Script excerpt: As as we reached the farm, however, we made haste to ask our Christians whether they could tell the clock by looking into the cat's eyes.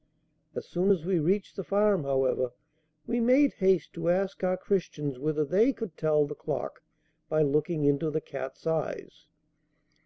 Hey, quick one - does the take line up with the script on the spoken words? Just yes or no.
no